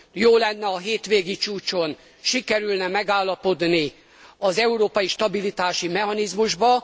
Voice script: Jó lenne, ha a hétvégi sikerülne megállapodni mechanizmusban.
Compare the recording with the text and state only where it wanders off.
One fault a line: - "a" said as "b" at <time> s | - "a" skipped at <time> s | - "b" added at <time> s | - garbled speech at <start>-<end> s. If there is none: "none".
- "csúcson" added at 1.4 s
- "az európai stabilitási" added at 4.4 s